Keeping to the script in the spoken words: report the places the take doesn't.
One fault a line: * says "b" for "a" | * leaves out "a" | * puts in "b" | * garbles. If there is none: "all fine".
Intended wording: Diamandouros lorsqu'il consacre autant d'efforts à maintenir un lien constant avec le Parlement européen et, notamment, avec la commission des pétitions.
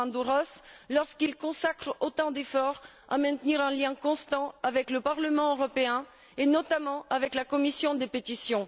all fine